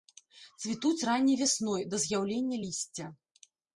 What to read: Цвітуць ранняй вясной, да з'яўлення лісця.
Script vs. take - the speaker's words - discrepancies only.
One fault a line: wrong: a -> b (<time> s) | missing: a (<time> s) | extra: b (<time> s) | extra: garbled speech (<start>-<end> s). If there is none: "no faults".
no faults